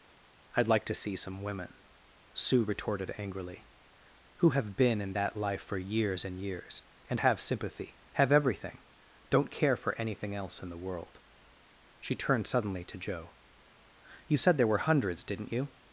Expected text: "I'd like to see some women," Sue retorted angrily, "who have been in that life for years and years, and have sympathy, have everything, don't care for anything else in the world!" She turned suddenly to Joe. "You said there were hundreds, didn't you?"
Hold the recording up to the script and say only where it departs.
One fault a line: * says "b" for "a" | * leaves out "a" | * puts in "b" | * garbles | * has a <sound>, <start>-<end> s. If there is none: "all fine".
all fine